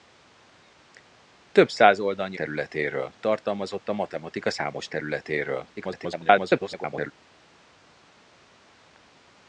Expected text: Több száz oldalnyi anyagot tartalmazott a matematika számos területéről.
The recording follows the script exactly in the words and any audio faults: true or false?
false